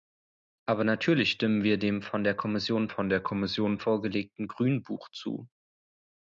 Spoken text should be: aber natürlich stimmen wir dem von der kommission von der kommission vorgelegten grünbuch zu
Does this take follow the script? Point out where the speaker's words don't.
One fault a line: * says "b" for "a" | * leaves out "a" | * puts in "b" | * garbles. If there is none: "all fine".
all fine